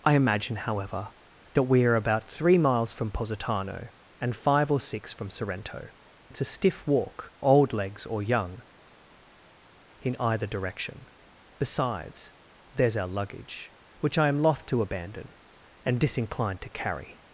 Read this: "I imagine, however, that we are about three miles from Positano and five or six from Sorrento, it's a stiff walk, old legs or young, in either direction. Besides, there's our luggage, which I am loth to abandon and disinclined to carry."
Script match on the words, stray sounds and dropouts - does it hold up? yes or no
yes